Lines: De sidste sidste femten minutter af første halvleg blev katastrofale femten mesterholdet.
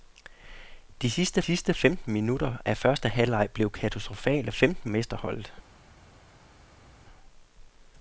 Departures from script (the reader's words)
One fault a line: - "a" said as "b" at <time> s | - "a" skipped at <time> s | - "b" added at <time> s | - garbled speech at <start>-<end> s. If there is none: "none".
none